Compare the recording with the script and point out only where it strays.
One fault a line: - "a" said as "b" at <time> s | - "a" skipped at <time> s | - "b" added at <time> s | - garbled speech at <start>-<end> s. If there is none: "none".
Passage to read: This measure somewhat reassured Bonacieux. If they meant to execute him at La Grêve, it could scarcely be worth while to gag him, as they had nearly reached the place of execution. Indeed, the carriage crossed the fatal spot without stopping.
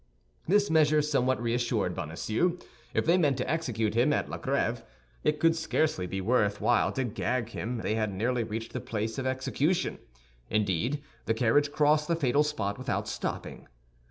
- "as" skipped at 7.8 s